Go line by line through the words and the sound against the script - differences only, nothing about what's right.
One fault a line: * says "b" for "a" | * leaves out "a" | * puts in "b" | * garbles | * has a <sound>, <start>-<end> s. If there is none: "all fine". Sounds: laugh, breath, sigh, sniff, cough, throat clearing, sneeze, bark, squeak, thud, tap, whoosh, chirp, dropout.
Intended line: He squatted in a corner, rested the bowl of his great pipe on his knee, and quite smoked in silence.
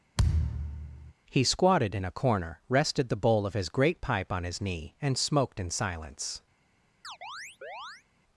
* has a thud, 0.2-1.1 s
* leaves out "quite"
* has a chirp, 7.0-8.0 s